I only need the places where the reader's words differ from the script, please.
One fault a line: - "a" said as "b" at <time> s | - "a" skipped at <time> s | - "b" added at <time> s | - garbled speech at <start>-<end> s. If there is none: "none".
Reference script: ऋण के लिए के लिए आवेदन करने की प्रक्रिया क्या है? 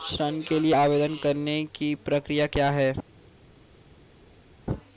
- "के लिए" skipped at 0.7 s